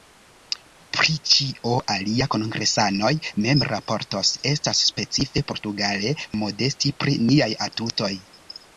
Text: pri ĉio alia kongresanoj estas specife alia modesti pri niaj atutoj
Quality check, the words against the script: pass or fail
fail